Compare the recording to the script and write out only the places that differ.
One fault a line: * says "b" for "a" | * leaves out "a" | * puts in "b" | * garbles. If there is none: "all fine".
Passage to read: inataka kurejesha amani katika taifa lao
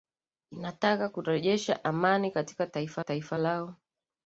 * puts in "taifa"